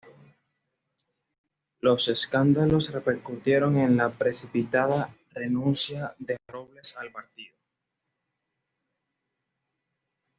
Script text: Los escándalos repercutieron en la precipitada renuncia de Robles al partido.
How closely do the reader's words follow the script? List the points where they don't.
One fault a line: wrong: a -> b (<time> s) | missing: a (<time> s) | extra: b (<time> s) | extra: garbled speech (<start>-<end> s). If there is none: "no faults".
no faults